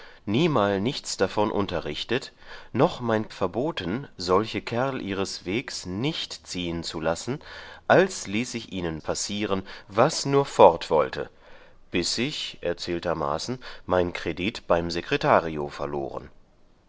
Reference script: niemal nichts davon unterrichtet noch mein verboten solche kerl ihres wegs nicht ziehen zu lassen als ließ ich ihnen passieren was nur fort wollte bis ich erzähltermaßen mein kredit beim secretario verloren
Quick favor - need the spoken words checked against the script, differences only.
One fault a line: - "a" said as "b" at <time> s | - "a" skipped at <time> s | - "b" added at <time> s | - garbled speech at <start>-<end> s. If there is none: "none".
none